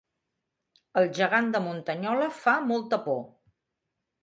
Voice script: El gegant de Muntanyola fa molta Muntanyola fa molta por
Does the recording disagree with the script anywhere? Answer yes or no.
yes